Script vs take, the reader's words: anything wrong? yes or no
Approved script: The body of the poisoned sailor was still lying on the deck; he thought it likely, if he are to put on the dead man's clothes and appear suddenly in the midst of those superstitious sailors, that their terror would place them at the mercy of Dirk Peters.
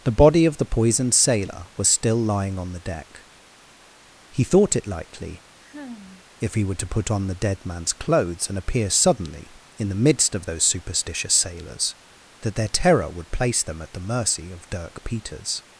yes